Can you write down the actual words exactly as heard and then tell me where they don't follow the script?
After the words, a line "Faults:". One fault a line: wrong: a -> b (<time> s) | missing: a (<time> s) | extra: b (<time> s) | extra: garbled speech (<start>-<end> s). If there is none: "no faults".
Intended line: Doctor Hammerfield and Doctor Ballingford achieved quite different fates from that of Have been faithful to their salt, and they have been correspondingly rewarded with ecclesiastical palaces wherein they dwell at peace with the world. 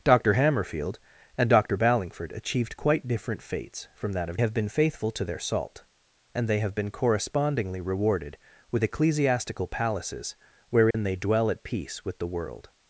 Doctor Hammerfield and Doctor Ballingford achieved quite different fates from that of Have been faithful to their salt, and they have been correspondingly rewarded with ecclesiastical palaces wherein they dwell at peace with the world.
Faults:
no faults